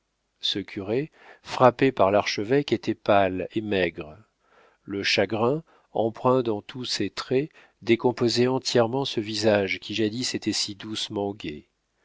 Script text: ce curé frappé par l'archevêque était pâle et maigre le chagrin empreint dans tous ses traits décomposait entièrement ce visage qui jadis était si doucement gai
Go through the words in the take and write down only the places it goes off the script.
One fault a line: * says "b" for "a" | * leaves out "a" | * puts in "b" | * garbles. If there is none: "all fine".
all fine